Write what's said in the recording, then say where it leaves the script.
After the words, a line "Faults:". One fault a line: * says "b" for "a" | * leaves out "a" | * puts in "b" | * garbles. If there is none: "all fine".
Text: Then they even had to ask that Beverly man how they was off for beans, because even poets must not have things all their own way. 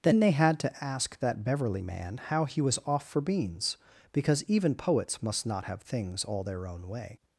Then they had to ask that Beverly man how he was off for beans, because even poets must not have things all their own way.
Faults:
* leaves out "even"
* says "he" for "they"